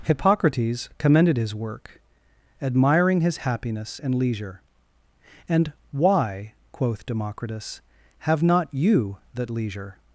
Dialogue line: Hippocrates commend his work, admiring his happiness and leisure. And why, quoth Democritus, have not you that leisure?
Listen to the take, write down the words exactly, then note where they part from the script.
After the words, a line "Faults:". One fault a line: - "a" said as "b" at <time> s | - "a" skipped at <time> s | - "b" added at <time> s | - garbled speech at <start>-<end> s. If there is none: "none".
Hippocrates commended his work, admiring his happiness and leisure. And why, quoth Democritus, have not you that leisure?
Faults:
- "commend" said as "commended" at 1.0 s